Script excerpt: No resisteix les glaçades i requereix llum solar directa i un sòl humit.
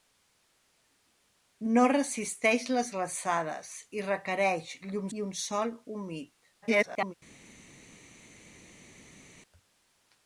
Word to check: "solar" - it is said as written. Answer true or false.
false